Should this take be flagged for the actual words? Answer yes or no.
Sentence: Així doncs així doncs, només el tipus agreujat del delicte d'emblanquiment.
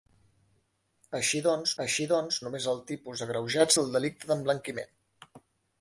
no